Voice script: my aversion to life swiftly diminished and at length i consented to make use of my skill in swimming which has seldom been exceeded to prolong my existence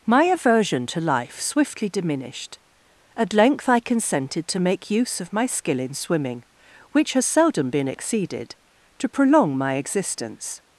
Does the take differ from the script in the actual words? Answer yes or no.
yes